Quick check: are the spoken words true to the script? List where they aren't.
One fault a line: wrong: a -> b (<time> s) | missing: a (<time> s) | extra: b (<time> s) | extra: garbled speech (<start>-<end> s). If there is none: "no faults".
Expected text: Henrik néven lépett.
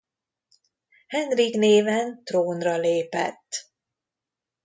extra: trónra (2.2 s)